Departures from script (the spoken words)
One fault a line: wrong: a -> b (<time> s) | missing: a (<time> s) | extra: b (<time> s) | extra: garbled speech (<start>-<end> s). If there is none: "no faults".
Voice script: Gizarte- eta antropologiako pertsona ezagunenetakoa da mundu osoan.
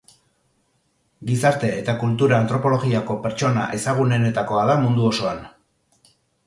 extra: kultura (2.0 s)